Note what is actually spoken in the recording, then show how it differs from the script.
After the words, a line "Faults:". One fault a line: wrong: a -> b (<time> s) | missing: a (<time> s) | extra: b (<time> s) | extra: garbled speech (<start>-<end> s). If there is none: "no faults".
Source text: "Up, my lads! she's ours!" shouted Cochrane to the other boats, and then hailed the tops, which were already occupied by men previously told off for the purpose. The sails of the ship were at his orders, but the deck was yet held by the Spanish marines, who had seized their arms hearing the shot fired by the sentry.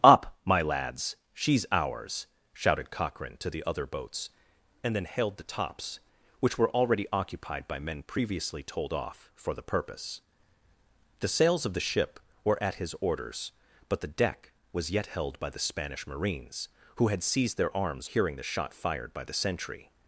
"Up, my lads! she's ours!" shouted Cochrane to the other boats, and then hailed the tops, which were already occupied by men previously told off for the purpose. The sails of the ship were at his orders, but the deck was yet held by the Spanish marines, who had seized their arms hearing the shot fired by the sentry.
Faults:
no faults